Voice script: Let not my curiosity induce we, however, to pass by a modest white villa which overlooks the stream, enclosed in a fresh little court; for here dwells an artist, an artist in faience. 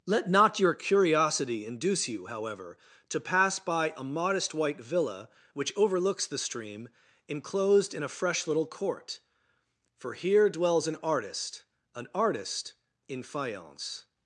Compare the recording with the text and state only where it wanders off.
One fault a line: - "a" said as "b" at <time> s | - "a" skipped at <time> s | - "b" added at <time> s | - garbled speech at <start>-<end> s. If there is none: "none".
- "my" said as "your" at 0.6 s
- "we" said as "you" at 2.1 s